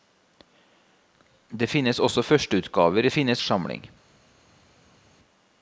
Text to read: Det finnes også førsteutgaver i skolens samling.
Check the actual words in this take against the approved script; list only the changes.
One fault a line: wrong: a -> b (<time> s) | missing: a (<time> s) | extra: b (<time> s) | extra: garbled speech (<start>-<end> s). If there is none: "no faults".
wrong: skolens -> finnes (3.1 s)